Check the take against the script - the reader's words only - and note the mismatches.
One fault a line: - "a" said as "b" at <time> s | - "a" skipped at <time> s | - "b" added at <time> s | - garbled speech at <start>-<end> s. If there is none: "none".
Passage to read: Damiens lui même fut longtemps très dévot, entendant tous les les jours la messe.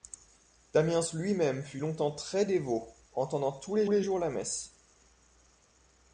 none